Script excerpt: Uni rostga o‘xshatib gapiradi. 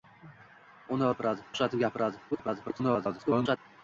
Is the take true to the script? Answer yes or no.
no